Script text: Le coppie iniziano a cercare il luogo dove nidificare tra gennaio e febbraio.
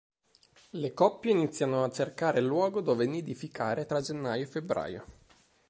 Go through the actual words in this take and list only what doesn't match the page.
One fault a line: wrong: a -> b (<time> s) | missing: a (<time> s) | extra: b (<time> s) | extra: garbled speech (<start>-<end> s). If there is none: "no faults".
no faults